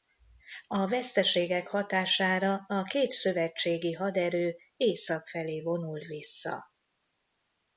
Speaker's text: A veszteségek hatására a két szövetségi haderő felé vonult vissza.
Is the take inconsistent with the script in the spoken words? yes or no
yes